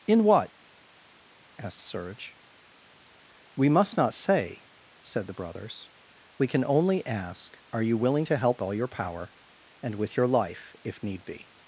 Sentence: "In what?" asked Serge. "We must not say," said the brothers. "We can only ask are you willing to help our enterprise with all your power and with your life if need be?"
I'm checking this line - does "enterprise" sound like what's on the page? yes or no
no